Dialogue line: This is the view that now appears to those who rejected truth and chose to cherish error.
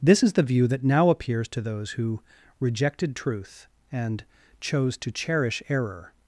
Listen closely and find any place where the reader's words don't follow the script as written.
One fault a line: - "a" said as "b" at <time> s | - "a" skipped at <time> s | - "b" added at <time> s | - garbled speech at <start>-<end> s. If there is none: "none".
none